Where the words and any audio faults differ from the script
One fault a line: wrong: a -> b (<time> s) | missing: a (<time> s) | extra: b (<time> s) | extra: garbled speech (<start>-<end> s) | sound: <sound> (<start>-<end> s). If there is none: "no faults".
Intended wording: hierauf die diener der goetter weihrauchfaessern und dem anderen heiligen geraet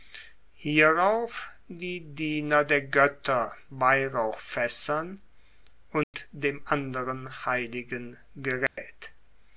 sound: dropout (6.0-6.1 s)
sound: dropout (8.7-8.8 s)